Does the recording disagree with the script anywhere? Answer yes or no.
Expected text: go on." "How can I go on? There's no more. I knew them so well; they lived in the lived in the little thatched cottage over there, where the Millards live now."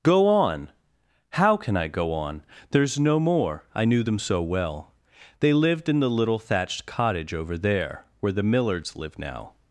yes